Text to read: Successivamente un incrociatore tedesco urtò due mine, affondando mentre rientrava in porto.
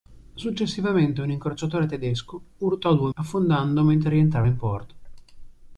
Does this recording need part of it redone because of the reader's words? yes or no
yes